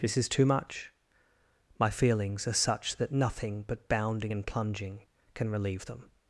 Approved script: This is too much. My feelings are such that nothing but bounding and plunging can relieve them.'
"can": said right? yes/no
yes